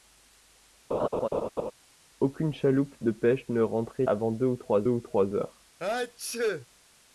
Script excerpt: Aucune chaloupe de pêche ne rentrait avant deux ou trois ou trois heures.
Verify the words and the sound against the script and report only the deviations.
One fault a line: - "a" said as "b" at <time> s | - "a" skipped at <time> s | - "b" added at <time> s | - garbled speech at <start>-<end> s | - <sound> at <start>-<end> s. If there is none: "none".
- laugh at 0.9-1.7 s
- sneeze at 5.8-6.7 s